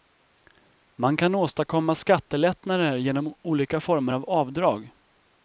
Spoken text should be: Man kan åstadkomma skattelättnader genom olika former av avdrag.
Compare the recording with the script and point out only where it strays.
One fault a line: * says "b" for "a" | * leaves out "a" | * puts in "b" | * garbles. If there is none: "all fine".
all fine